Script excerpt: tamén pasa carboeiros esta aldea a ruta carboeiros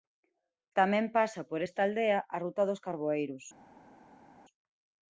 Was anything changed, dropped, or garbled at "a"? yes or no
no